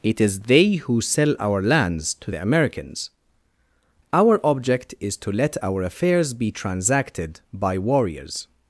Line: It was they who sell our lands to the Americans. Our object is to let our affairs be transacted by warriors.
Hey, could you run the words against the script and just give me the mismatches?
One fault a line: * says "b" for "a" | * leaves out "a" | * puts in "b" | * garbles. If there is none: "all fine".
* says "is" for "was"